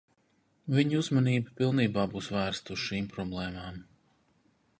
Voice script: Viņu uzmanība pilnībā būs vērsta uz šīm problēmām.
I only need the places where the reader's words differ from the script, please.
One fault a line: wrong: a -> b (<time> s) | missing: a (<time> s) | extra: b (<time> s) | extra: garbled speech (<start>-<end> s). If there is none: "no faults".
no faults